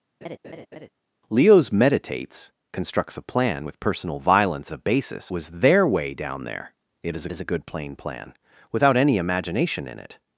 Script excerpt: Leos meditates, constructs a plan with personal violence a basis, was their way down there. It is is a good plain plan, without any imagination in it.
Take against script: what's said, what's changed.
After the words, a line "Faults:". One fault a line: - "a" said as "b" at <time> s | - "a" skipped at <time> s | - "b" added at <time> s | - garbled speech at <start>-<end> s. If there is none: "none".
Leos meditates, constructs a plan with personal violence a basis, was their way down there. It is is a good plain plan, without any imagination in it.
Faults:
none